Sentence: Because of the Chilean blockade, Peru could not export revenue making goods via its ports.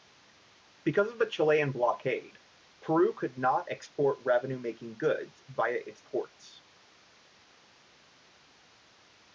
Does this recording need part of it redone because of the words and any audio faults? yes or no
no